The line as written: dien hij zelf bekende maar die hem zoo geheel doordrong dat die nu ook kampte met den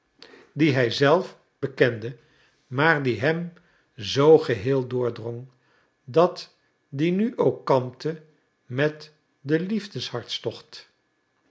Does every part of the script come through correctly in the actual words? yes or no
yes